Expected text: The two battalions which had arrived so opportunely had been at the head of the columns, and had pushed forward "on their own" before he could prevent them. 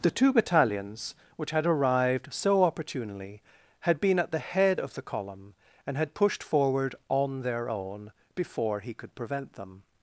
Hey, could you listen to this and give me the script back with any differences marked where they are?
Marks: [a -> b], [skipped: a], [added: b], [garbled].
The two battalions which had arrived so opportunely had been at the head of the [columns, -> column] and had pushed forward "on their own" before he could prevent them.